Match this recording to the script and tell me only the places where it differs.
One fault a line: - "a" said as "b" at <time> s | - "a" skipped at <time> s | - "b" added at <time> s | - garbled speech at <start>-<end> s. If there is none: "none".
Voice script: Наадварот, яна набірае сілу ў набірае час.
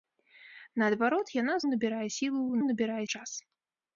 none